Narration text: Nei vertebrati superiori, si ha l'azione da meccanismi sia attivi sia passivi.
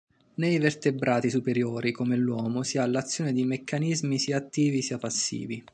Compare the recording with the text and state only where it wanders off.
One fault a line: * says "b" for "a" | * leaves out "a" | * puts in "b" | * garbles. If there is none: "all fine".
* puts in "come l'uomo"
* says "di" for "da"